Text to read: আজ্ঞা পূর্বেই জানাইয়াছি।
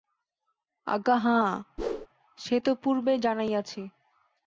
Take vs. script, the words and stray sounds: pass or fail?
fail